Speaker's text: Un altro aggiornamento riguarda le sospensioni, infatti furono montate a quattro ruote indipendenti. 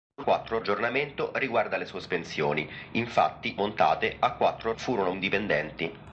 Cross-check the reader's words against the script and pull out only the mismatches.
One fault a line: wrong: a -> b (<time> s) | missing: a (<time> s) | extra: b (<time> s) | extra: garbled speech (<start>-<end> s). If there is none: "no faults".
wrong: altro -> quattro (0.2 s)
missing: furono (3.6 s)
wrong: ruote -> furono (4.8 s)